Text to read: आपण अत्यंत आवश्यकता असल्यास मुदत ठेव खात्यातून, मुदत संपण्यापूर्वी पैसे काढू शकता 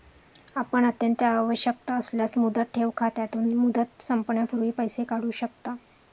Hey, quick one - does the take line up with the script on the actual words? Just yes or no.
yes